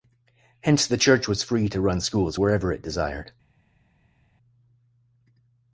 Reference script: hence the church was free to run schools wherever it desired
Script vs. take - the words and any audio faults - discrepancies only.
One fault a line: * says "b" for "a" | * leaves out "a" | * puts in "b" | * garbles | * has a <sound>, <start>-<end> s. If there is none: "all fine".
all fine